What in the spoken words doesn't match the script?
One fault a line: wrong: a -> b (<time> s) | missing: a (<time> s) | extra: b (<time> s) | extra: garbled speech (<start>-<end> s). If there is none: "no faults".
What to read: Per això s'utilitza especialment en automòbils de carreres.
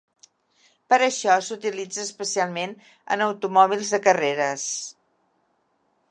no faults